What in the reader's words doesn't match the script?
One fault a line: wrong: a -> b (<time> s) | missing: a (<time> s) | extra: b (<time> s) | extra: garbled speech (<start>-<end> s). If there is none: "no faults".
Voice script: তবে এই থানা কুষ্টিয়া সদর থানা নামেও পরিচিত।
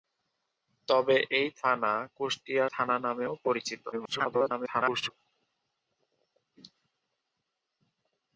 missing: সদর (2.6 s)
extra: garbled speech (3.9-5.1 s)